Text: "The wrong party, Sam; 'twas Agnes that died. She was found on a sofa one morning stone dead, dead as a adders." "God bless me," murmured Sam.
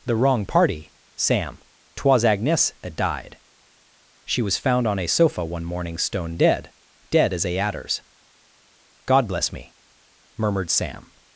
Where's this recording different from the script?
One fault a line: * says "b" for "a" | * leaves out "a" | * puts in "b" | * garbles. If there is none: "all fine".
all fine